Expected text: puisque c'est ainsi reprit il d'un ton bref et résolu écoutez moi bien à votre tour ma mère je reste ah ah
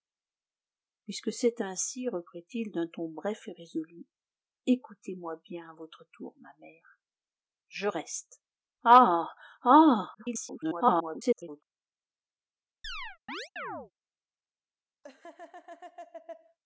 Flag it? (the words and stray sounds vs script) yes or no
yes